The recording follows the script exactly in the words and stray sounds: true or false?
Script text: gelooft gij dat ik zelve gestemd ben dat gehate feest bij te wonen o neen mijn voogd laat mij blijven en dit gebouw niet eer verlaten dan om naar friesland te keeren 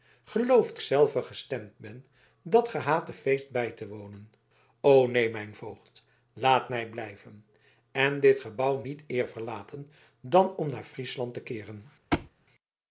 false